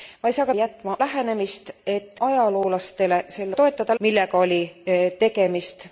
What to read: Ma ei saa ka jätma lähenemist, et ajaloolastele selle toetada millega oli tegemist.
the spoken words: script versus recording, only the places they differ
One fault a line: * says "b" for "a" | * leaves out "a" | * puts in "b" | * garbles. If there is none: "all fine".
all fine